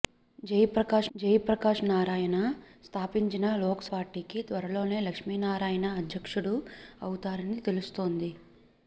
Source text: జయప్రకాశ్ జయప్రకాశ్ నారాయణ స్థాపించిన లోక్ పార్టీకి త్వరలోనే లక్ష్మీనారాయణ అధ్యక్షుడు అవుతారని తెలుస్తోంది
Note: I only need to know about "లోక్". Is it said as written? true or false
true